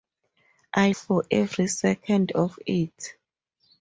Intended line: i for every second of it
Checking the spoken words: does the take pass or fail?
pass